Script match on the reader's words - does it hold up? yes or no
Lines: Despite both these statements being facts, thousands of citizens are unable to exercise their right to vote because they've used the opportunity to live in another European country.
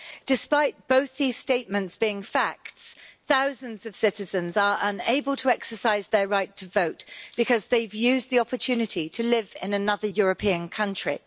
yes